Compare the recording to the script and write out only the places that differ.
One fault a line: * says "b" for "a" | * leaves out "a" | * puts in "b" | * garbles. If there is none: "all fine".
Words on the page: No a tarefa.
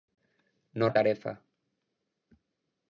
all fine